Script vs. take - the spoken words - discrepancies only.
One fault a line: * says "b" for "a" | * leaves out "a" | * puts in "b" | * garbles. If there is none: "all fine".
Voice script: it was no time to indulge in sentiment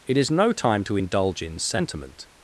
* says "is" for "was"